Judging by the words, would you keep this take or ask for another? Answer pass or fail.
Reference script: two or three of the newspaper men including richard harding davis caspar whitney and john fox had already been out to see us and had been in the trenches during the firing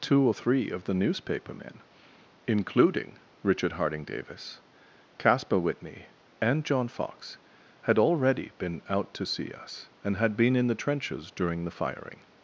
pass